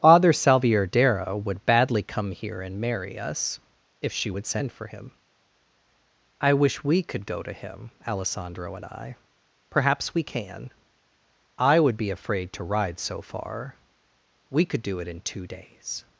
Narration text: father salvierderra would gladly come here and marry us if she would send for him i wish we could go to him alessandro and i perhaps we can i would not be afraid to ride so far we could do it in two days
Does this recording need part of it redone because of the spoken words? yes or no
yes